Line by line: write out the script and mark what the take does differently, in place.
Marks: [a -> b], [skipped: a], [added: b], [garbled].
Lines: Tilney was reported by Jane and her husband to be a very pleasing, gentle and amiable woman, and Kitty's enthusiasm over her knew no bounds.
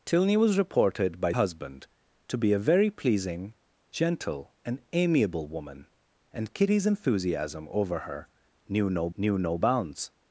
Tilney was reported by [skipped: Jane and her] husband to be a very pleasing, gentle and amiable woman, and Kitty's enthusiasm over her knew no [added: knew no] bounds.